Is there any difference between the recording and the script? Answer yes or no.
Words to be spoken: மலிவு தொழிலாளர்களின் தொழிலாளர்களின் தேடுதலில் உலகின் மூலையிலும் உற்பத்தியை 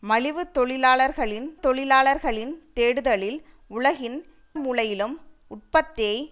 no